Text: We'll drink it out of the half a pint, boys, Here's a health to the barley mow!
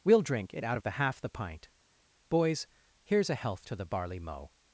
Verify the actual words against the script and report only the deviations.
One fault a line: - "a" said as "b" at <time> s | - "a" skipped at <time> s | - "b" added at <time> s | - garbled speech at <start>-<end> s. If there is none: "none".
- "a" said as "the" at 1.2 s